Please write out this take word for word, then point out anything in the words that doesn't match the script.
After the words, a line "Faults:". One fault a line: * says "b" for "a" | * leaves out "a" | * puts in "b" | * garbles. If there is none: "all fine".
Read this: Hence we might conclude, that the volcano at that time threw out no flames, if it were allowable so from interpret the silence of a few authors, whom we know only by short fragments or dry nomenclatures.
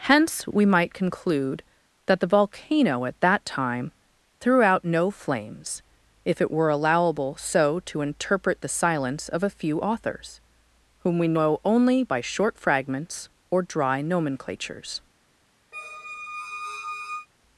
Hence we might conclude, that the volcano at that time threw out no flames, if it were allowable so to interpret the silence of a few authors, whom we know only by short fragments or dry nomenclatures.
Faults:
* says "to" for "from"